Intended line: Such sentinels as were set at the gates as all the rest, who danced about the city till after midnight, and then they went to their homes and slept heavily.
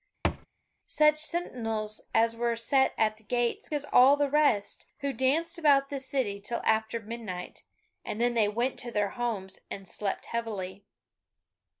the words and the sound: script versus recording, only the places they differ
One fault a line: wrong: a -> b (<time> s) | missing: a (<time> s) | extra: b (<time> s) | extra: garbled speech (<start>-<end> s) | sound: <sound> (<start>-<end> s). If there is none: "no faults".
sound: thud (0.2-0.5 s)